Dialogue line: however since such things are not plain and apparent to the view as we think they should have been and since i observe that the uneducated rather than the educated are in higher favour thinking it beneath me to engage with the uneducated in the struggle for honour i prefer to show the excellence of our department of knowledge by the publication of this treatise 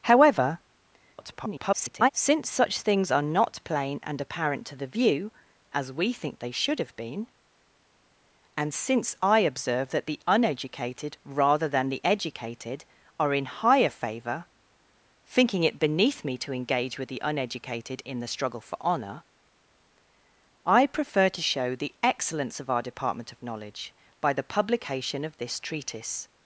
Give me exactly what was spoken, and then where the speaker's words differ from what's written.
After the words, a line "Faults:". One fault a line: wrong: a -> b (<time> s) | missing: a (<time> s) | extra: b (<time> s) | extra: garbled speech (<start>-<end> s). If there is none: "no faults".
however [garbled] since such things are not plain and apparent to the view as we think they should have been and since i observe that the uneducated rather than the educated are in higher favour thinking it beneath me to engage with the uneducated in the struggle for honour i prefer to show the excellence of our department of knowledge by the publication of this treatise
Faults:
extra: garbled speech (1.2-2.1 s)